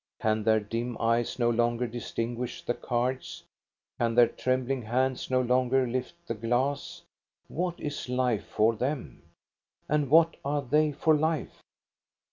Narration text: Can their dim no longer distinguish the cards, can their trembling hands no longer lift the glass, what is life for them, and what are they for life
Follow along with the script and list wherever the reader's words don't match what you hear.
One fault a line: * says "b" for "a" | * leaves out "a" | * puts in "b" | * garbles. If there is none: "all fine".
* puts in "eyes"